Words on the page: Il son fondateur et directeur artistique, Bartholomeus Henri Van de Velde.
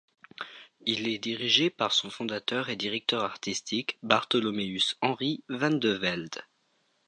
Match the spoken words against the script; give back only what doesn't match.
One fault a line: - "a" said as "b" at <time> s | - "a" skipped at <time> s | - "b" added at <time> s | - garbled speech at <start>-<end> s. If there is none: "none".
- "est dirigé par" added at 1.1 s